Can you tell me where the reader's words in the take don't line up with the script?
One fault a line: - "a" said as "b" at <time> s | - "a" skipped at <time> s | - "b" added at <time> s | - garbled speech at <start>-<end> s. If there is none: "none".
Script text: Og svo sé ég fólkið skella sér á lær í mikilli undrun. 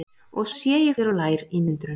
- "svo" skipped at 0.5 s
- "fólkið skella" skipped at 1.0 s
- "mikilli" skipped at 1.6 s